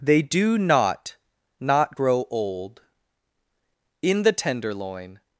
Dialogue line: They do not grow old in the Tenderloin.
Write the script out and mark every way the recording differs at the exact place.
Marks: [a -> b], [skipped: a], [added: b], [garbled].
They do not [added: not] grow old in the Tenderloin.